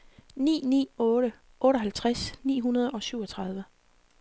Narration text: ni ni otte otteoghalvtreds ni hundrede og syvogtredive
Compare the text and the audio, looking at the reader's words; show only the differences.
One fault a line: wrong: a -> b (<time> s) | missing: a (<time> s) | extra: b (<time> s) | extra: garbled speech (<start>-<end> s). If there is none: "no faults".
no faults